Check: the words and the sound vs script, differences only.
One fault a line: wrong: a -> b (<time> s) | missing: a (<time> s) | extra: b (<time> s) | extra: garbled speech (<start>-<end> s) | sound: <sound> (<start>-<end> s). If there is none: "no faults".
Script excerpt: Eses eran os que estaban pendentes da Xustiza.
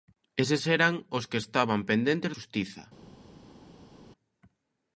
missing: da (2.3 s)